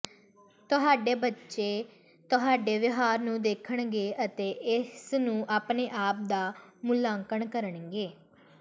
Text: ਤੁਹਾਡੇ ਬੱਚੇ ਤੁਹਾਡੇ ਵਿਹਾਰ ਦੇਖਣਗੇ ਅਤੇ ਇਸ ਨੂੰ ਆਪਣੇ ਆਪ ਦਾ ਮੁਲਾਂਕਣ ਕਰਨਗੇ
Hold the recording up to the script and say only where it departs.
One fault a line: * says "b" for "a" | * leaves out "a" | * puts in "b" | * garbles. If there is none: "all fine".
* puts in "ਨੂੰ"